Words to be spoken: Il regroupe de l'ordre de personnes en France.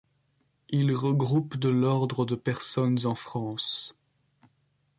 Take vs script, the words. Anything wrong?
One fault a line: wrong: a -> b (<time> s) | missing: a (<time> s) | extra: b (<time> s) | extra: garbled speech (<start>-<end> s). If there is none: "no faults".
no faults